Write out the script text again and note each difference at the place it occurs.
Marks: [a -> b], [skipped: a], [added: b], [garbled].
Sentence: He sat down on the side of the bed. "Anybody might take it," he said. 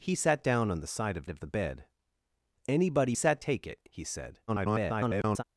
He sat down on the side of [added: of] the bed. "Anybody [might -> sat] take it," he said. [garbled]